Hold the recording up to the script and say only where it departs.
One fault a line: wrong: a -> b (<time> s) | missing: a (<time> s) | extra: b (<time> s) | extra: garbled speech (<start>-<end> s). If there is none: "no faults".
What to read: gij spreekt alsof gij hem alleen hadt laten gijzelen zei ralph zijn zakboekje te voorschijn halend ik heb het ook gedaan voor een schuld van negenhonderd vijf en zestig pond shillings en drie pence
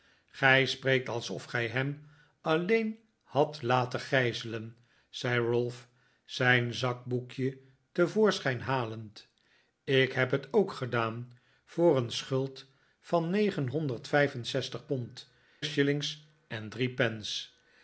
no faults